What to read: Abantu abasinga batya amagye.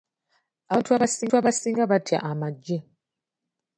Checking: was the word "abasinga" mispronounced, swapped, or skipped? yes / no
no